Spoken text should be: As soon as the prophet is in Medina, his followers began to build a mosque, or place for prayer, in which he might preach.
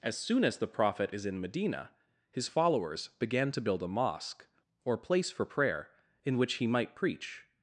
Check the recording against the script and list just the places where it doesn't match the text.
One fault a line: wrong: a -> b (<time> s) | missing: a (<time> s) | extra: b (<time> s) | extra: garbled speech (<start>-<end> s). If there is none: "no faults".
no faults